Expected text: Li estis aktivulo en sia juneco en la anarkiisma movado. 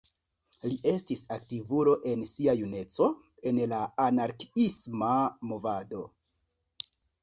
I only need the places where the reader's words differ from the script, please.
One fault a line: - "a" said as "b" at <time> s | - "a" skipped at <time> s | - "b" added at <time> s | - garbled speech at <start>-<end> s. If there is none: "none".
none